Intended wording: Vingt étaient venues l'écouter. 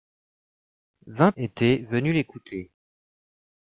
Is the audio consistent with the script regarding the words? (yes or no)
yes